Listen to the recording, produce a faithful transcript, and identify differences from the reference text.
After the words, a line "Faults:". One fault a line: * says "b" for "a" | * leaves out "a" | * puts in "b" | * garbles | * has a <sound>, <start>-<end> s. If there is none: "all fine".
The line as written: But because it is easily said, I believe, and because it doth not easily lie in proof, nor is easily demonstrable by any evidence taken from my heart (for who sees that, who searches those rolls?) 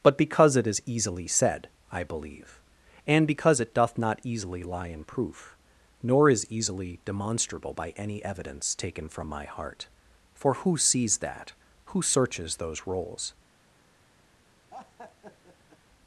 But because it is easily said, I believe, and because it doth not easily lie in proof, nor is easily demonstrable by any evidence taken from my heart (for who sees that, who searches those rolls?)
Faults:
* has a laugh, 14.7-15.8 s